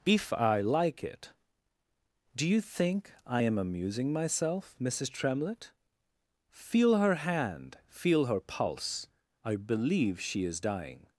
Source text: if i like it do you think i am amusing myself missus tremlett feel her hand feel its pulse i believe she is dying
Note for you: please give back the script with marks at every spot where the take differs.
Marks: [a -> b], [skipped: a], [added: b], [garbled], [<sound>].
if i like it do you think i am amusing myself missus tremlett feel her hand feel [its -> her] pulse i believe she is dying